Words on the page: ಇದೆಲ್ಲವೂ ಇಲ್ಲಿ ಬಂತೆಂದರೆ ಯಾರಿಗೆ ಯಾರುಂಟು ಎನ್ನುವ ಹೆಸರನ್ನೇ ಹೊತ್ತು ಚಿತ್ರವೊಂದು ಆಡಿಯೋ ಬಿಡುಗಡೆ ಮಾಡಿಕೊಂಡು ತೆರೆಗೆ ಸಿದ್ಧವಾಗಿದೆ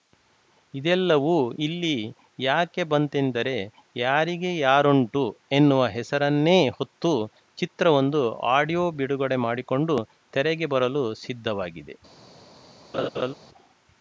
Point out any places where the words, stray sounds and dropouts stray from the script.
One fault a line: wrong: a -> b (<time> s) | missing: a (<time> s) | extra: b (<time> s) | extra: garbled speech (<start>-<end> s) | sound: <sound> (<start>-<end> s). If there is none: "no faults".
extra: ಯಾಕೆ (2.4 s)
extra: ಬರಲು (10.7 s)
sound: laugh (12.9-13.3 s)